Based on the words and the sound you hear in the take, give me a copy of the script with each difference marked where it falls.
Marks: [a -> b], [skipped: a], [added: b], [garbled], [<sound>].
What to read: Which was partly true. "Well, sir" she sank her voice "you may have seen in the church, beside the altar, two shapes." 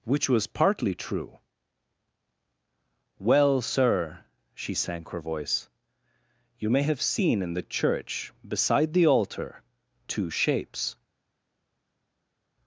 Which was partly true. "Well, sir" she sank her voice "you may have seen in the church, beside the altar, two shapes."